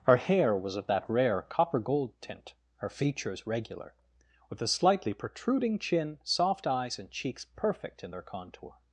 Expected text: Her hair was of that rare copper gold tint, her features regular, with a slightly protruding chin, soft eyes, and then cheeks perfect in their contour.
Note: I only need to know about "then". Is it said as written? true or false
false